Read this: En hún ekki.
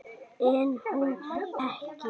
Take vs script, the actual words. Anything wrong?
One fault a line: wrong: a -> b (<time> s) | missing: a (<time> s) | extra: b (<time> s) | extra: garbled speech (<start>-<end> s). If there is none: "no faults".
no faults